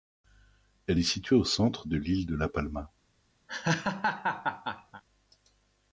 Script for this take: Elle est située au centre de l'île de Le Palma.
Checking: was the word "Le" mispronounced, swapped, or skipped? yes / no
yes